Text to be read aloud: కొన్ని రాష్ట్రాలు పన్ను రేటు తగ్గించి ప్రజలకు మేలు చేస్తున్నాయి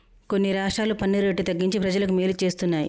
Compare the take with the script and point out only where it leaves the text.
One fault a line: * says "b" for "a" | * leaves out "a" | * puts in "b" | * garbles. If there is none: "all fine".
all fine